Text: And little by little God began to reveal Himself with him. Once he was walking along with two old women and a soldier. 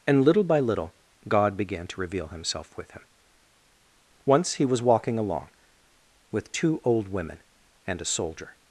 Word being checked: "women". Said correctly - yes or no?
yes